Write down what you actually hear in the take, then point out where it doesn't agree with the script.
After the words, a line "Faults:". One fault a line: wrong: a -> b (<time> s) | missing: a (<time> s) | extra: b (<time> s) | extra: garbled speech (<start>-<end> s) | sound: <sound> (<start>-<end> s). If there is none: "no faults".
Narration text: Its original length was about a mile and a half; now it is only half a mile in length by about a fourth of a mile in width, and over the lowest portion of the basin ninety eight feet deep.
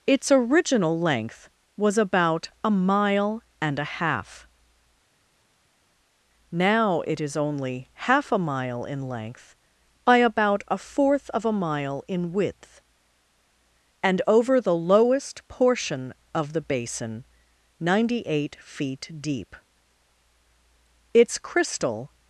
Its original length was about a mile and a half; now it is only half a mile in length by about a fourth of a mile in width, and over the lowest portion of the basin ninety eight feet deep. Its crystal
Faults:
extra: Its crystal (21.1 s)